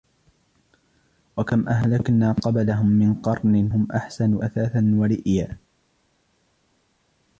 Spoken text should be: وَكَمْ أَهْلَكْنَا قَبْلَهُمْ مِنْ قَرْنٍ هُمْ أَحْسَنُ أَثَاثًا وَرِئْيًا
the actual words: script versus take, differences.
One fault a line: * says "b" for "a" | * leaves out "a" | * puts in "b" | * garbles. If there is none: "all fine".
all fine